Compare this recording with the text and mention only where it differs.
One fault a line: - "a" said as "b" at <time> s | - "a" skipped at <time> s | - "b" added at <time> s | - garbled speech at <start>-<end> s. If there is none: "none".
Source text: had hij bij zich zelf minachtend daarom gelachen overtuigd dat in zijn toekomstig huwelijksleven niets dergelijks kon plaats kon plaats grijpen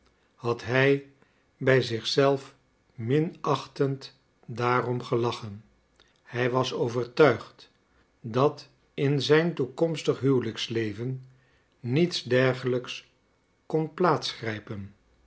- "hij was" added at 6.2 s
- "kon plaats" skipped at 14.3 s